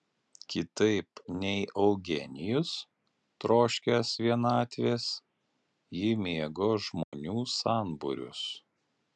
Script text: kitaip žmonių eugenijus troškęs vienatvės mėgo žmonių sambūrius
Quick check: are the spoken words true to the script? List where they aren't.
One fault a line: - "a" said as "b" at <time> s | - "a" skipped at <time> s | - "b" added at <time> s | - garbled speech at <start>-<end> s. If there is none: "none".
- "žmonių" said as "nei" at 1.4 s
- "ji" added at 6.0 s